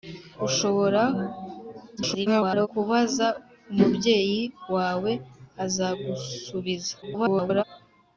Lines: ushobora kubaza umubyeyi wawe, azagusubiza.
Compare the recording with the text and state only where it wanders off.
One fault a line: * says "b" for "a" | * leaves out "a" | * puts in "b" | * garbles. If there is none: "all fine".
* garbles
* garbles